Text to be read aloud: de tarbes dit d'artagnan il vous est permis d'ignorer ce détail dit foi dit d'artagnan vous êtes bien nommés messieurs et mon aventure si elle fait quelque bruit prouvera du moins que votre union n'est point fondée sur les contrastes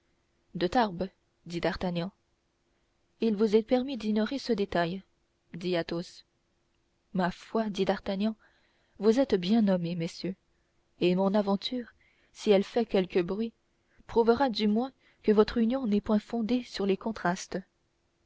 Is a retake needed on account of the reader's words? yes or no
yes